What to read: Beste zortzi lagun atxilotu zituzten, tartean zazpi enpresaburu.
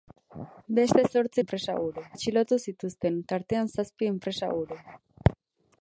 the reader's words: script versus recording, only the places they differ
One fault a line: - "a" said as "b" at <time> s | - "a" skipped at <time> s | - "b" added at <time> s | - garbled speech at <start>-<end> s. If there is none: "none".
- "lagun" said as "enpresaburu" at 1.4 s